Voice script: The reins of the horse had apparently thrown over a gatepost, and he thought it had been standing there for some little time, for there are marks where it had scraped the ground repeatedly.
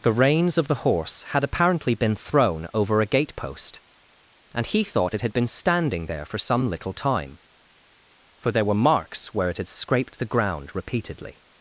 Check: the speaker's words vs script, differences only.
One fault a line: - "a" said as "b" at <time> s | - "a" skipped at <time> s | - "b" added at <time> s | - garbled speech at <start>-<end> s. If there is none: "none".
- "been" added at 1.9 s
- "are" said as "were" at 8.6 s